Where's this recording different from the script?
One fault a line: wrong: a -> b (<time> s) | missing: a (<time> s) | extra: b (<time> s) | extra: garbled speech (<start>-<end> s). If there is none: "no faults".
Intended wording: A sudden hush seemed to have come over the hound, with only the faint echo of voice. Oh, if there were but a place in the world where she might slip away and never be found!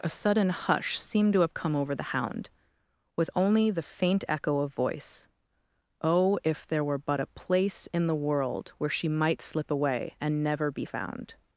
no faults